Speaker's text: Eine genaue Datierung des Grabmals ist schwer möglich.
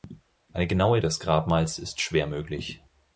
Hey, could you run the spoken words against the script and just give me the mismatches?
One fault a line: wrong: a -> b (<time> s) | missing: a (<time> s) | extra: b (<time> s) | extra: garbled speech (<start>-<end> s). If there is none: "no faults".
missing: Datierung (1.0 s)